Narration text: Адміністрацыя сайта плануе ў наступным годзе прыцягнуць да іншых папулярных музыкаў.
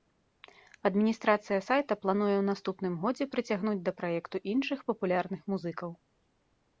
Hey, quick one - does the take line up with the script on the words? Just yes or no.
no